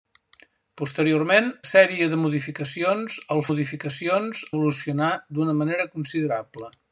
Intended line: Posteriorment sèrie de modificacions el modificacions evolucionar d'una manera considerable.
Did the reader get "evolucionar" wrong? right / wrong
right